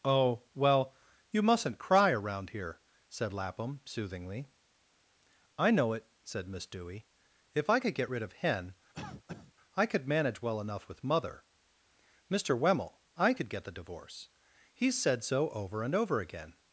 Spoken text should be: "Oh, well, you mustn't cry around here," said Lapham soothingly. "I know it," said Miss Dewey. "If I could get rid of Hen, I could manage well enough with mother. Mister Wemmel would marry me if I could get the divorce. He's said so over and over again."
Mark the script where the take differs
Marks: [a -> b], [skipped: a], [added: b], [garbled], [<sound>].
"Oh, well, you mustn't cry around here," said Lapham soothingly. "I know it," said Miss Dewey. "If I could get rid of Hen, [cough] I could manage well enough with mother. Mister Wemmel [skipped: would marry me if] I could get the divorce. He's said so over and over again."